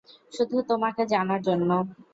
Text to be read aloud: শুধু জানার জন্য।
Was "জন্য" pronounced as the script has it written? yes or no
yes